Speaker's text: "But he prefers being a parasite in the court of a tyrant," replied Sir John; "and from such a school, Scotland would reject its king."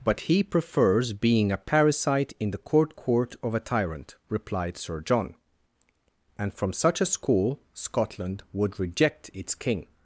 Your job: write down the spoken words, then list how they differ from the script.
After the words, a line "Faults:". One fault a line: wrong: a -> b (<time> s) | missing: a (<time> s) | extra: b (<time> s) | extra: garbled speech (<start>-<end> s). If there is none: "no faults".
"But he prefers being a parasite in the court court of a tyrant," replied Sir John; "and from such a school, Scotland would reject its king."
Faults:
extra: court (3.0 s)